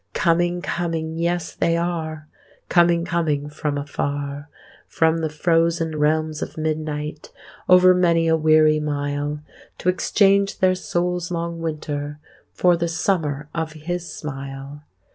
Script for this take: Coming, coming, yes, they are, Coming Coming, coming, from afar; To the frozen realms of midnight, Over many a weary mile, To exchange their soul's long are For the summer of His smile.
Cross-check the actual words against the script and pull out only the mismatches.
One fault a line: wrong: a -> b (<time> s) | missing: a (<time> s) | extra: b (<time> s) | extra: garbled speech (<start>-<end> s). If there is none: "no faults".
missing: coming (3.5 s)
wrong: To -> From (4.9 s)
wrong: are -> winter (11.6 s)